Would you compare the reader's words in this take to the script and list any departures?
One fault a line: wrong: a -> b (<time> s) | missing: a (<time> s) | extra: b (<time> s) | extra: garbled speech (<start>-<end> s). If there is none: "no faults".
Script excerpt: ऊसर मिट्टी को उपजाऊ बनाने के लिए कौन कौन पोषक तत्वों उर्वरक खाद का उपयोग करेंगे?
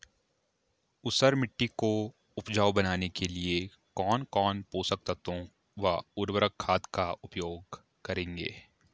extra: व (5.8 s)